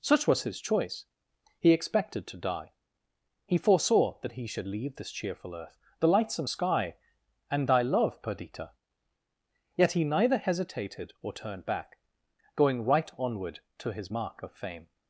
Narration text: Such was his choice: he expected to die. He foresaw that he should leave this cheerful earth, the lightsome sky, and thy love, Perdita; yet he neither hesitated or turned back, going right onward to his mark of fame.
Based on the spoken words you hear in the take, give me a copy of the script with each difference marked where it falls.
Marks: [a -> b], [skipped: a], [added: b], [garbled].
Such was his choice: he expected to die. He foresaw that he should leave this cheerful earth, the lightsome sky, and thy love, Perdita; yet he neither hesitated or turned back, going right onward to his mark of fame.